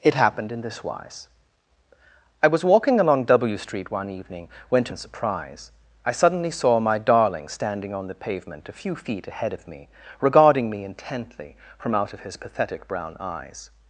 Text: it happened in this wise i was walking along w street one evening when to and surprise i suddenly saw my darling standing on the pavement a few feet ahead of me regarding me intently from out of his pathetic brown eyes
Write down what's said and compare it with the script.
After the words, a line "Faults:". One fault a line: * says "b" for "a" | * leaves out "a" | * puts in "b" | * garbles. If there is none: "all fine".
it happened in this wise i was walking along w street one evening when to and surprise i suddenly saw my darling standing on the pavement a few feet ahead of me regarding me intently from out of his pathetic brown eyes
Faults:
all fine